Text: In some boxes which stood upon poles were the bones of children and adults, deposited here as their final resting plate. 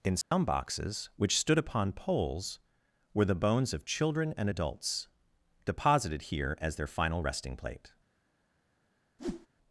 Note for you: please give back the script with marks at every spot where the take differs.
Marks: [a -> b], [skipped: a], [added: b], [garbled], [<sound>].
In some [dropout] boxes which stood upon poles were the bones of children and adults, deposited here as their final resting plate. [whoosh]